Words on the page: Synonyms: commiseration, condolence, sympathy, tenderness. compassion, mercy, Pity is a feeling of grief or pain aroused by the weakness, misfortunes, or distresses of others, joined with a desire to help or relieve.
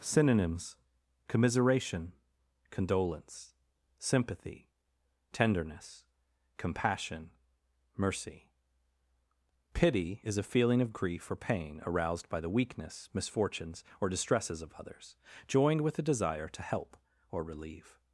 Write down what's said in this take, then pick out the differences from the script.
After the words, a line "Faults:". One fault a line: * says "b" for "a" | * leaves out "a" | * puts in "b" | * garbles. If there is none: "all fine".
Synonyms: commiseration, condolence, sympathy, tenderness. compassion, mercy, Pity is a feeling of grief or pain aroused by the weakness, misfortunes, or distresses of others, joined with a desire to help or relieve.
Faults:
all fine